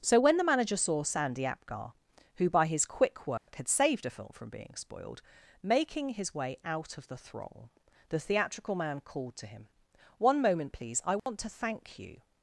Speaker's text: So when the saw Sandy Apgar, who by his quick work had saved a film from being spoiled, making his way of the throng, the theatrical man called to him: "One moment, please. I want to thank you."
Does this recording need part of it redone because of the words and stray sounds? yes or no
yes